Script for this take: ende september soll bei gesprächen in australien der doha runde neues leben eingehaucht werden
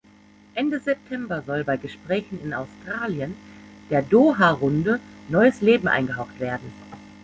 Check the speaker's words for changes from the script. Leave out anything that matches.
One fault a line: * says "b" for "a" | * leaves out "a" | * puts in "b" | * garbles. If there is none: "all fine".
all fine